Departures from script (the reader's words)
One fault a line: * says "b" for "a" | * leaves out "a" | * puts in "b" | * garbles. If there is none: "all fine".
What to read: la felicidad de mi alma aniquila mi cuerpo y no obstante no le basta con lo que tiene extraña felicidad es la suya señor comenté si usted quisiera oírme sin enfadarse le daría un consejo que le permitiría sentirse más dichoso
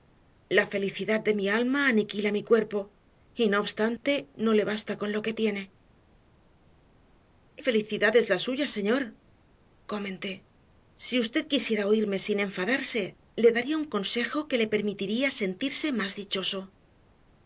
* leaves out "extraña"